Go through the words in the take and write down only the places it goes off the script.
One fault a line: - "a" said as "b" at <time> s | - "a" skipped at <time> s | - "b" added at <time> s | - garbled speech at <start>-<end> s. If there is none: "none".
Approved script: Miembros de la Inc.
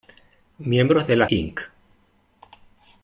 none